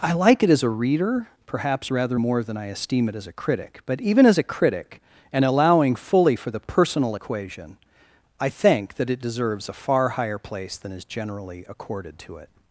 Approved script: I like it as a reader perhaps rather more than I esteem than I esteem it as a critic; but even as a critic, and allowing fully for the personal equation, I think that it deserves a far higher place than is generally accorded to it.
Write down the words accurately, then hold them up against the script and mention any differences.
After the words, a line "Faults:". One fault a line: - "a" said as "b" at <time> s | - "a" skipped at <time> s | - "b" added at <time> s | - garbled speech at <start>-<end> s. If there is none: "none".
I like it as a reader perhaps rather more than I esteem it as a critic; but even as a critic, and allowing fully for the personal equation, I think that it deserves a far higher place than is generally accorded to it.
Faults:
- "than I esteem" skipped at 3.1 s